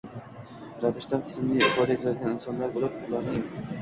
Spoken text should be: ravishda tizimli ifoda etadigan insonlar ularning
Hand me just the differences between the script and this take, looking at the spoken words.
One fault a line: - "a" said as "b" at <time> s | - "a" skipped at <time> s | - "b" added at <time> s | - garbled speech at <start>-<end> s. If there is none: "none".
- "bo‘lib" added at 2.8 s